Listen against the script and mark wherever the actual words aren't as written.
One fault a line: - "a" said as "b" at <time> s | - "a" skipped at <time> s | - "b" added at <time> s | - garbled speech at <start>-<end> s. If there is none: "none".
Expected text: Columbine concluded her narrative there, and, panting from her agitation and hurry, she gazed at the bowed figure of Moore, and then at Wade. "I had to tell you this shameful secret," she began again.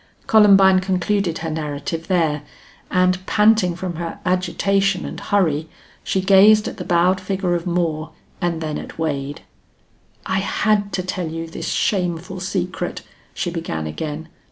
none